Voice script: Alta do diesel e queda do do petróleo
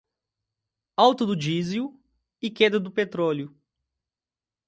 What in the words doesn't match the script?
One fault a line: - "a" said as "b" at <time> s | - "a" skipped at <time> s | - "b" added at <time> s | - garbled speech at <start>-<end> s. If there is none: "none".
- "do" skipped at 2.9 s